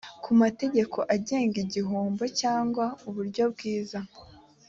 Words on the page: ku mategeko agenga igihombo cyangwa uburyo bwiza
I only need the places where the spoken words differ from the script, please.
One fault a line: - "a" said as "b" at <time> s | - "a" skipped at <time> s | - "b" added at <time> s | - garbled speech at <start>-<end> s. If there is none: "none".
none